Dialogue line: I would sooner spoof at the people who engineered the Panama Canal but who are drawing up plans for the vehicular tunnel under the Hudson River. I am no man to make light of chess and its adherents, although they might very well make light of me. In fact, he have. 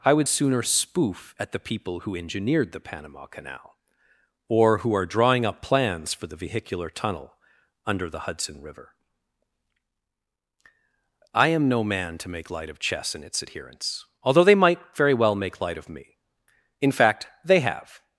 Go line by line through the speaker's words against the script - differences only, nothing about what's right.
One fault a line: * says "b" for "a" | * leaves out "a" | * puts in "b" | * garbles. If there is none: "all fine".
* says "or" for "but"
* says "they" for "he"